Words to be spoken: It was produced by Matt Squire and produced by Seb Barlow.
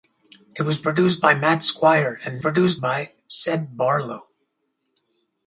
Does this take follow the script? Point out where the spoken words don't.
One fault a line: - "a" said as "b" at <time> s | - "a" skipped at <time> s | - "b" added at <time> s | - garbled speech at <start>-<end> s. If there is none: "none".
none